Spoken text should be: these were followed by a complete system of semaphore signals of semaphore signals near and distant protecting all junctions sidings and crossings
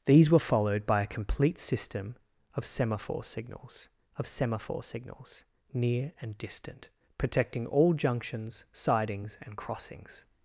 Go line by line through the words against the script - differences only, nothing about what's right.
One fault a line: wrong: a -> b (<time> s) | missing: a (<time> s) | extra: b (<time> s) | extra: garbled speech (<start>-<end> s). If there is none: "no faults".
no faults